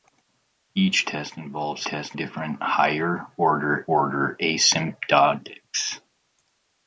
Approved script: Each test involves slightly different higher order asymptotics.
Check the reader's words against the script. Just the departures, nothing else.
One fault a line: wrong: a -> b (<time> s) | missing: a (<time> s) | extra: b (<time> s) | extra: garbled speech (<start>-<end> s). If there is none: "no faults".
wrong: slightly -> test (1.8 s)
extra: order (3.9 s)